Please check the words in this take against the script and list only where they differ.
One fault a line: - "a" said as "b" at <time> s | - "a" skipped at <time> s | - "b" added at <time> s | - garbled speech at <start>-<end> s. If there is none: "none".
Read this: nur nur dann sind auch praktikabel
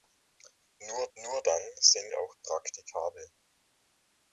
none